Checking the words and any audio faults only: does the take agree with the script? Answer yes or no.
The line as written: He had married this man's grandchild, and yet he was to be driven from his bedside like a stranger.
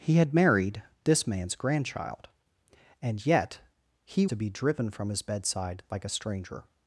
no